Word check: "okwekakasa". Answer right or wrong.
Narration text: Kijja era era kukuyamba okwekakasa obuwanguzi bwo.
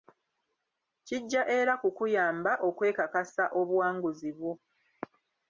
right